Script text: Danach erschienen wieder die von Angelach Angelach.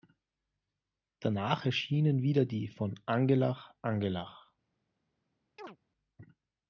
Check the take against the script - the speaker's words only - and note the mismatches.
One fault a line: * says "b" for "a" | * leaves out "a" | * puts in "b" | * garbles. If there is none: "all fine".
all fine